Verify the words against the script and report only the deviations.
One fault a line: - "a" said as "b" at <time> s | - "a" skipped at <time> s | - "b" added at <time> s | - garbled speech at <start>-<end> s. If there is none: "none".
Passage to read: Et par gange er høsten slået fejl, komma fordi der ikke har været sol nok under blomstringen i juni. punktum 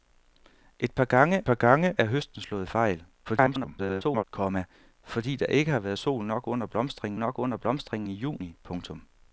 - "par gange" added at 1.4 s
- garbled speech at 3.2-4.2 s
- "nok under blomstringen" added at 7.2 s